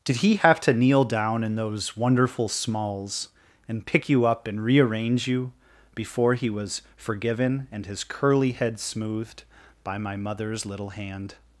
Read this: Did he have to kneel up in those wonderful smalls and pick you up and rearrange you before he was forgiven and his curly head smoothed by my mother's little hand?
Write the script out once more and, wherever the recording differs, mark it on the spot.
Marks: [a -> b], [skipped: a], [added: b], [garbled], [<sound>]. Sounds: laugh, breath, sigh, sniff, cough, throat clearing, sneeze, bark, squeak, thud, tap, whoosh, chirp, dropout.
Did he have to kneel [up -> down] in those wonderful smalls and pick you up and rearrange you before he was forgiven and his curly head smoothed by my mother's little hand?